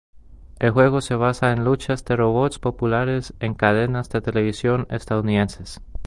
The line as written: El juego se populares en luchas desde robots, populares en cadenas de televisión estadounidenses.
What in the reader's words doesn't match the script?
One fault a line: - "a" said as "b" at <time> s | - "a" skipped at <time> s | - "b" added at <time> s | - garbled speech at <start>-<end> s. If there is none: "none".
- "populares" said as "basa" at 1.1 s
- "desde" said as "de" at 2.0 s